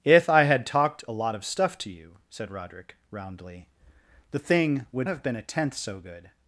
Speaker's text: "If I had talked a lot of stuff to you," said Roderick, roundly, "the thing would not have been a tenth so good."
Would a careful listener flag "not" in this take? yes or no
yes